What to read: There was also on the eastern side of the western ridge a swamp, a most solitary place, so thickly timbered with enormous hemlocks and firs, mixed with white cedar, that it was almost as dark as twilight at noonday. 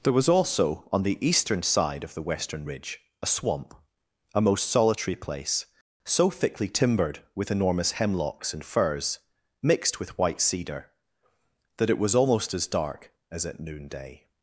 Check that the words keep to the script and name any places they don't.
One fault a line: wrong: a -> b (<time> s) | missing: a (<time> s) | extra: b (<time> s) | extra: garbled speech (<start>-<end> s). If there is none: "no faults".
missing: twilight (13.4 s)